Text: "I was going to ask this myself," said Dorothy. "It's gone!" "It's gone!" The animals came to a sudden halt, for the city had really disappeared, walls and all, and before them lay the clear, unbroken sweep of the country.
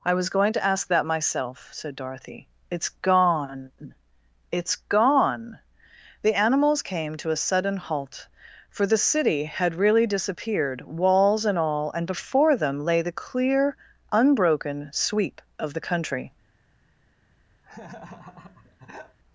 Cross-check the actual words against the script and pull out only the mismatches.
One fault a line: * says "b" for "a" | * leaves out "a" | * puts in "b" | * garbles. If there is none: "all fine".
* says "that" for "this"